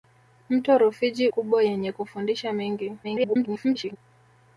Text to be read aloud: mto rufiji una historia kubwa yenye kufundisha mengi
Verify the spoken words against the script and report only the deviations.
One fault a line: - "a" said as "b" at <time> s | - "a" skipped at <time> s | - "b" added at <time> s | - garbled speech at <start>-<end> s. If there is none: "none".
- "una historia" skipped at 1.3 s
- garbled speech at 3.0-4.0 s